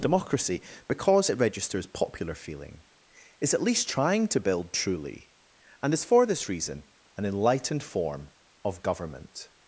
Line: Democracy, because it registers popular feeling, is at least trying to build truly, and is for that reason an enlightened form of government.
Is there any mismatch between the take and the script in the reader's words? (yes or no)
yes